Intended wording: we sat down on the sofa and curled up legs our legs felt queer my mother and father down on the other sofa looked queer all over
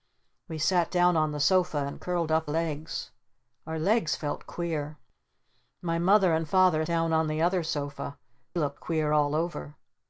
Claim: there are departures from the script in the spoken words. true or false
false